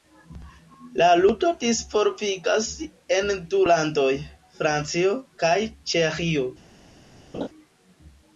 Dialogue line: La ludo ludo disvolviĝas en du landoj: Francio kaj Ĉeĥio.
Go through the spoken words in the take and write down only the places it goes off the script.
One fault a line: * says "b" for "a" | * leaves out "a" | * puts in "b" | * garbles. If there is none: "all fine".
* leaves out "ludo"